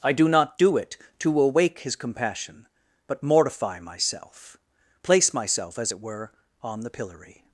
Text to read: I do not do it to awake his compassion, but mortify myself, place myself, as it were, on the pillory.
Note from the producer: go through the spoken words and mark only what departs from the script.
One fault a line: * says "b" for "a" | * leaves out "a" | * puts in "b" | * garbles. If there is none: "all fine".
all fine